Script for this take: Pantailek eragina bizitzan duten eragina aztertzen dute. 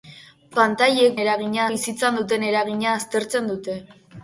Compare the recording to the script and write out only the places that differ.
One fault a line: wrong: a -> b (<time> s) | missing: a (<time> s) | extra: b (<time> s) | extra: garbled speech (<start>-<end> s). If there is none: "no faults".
no faults